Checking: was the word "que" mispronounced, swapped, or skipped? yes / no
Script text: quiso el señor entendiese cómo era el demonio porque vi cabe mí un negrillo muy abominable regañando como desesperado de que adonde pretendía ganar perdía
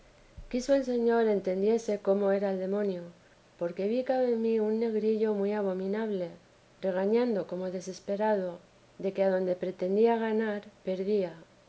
no